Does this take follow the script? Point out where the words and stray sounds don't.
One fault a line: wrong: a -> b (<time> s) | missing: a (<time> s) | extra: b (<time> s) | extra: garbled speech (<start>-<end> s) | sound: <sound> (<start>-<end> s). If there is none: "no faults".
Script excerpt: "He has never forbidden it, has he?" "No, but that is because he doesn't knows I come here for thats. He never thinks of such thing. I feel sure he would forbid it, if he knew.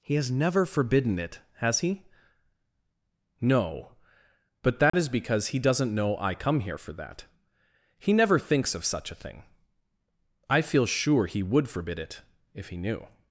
sound: dropout (4.9-4.9 s)
wrong: knows -> know (5.9 s)
wrong: thats -> that (6.9 s)
extra: a (9.1 s)